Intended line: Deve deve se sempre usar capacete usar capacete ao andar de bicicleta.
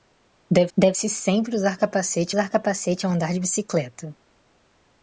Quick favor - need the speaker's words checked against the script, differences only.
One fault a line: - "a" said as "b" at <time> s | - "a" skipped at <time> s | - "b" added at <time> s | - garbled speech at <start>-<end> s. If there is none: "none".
none